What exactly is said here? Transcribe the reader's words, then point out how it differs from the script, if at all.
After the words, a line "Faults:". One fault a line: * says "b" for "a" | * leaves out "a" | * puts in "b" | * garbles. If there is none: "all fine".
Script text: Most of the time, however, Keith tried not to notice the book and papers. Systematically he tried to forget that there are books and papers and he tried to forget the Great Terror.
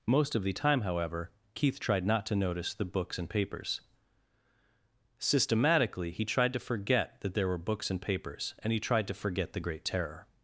Most of the time, however, Keith tried not to notice the books and papers. Systematically he tried to forget that there were books and papers and he tried to forget the Great Terror.
Faults:
* says "books" for "book"
* says "were" for "are"